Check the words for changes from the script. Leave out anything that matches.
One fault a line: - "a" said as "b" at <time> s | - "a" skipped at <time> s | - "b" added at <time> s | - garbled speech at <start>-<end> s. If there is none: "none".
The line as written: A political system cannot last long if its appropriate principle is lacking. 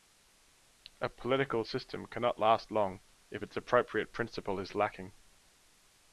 none